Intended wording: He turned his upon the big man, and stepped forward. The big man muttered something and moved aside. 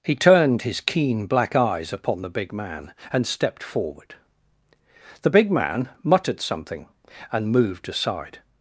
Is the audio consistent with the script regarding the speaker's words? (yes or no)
no